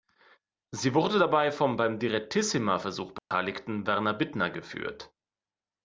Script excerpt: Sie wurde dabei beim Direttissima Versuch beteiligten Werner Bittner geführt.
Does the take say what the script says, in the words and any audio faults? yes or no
no